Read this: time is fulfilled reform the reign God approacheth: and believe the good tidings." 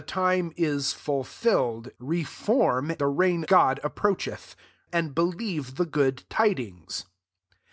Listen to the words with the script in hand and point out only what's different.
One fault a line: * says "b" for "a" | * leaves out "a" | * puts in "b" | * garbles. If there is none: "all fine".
all fine